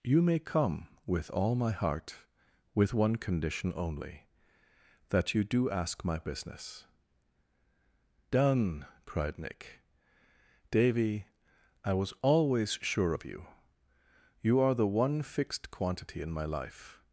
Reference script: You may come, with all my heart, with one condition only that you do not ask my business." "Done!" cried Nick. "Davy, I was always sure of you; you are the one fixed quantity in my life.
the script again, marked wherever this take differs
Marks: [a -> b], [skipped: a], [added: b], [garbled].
You may come, with all my heart, with one condition only that you do [skipped: not] ask my business." "Done!" cried Nick. "Davy, I was always sure of you; you are the one fixed quantity in my life.